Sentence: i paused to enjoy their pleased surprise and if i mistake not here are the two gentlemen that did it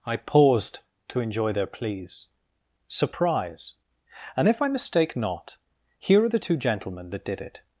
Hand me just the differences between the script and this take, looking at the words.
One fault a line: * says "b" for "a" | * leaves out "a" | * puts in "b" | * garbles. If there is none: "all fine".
* says "pleas" for "pleased"